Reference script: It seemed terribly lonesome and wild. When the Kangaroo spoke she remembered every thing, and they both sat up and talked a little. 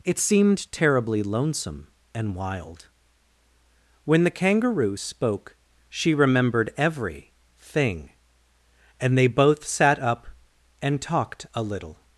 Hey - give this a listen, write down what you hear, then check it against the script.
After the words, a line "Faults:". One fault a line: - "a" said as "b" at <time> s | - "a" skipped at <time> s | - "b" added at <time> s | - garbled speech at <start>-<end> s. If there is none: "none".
It seemed terribly lonesome and wild. When the Kangaroo spoke she remembered every thing, and they both sat up and talked a little.
Faults:
none